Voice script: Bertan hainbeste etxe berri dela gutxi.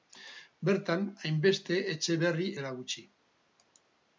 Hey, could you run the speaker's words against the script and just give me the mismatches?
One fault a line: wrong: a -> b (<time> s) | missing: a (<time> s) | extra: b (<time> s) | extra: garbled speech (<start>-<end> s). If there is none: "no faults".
no faults